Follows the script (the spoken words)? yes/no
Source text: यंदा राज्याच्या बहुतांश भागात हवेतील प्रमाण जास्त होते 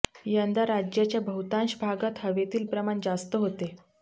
yes